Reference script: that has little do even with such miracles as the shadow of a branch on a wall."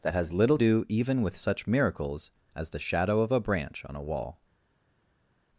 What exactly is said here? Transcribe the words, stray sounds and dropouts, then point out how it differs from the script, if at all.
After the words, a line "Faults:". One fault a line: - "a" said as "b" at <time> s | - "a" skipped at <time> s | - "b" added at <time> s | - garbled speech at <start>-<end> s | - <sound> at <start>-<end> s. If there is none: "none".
that has little do even with such miracles as the shadow of a branch on a wall."
Faults:
none